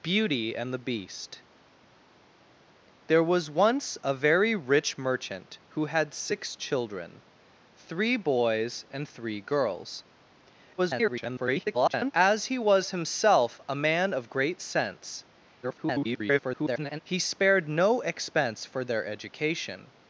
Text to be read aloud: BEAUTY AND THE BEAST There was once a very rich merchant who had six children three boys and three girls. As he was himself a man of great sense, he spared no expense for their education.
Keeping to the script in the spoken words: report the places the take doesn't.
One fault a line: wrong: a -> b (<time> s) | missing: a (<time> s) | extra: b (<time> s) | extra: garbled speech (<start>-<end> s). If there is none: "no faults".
extra: garbled speech (10.8-12.1 s)
extra: garbled speech (15.6-17.0 s)